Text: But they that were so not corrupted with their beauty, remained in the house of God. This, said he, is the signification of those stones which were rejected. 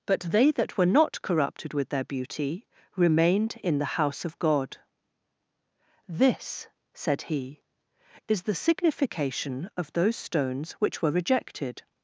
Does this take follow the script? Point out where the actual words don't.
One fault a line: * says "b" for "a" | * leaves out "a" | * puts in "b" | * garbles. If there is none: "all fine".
* leaves out "so"